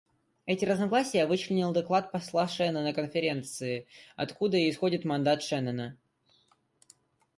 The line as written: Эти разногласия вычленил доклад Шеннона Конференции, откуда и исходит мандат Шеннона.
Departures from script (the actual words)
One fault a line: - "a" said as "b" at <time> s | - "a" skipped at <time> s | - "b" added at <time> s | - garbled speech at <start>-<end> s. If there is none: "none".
- "посла" added at 2.1 s